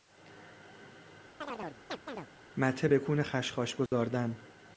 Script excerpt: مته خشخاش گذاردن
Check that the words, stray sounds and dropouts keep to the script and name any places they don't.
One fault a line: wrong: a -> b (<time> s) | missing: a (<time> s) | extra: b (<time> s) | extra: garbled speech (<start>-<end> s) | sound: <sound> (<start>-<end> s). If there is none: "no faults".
sound: chirp (1.4-2.3 s)
extra: بکون (2.9 s)
sound: dropout (3.9-3.9 s)